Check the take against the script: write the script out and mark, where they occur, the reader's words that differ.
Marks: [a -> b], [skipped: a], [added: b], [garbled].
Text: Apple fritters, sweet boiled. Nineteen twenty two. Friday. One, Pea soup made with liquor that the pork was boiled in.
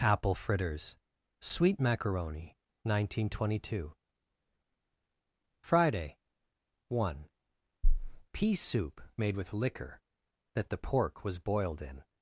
Apple fritters, sweet [boiled. -> macaroni] Nineteen twenty two. Friday. One, Pea soup made with liquor that the pork was boiled in.